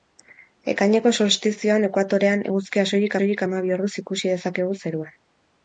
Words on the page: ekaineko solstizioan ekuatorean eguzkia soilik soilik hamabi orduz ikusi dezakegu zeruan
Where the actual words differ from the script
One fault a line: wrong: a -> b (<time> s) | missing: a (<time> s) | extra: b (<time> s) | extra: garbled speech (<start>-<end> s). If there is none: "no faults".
no faults